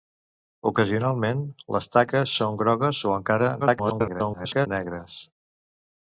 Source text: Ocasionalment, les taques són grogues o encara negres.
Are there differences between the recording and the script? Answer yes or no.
yes